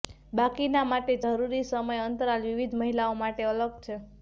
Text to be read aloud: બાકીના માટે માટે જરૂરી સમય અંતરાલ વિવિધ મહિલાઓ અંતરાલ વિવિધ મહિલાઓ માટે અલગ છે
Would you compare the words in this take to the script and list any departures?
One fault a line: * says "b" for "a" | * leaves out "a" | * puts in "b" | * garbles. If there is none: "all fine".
* leaves out "માટે"
* leaves out "અંતરાલ વિવિધ મહિલાઓ"